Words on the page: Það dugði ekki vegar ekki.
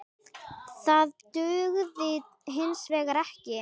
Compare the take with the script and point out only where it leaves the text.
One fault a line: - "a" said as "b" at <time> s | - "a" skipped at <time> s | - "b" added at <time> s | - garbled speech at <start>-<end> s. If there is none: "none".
- "ekki" said as "hins" at 2.6 s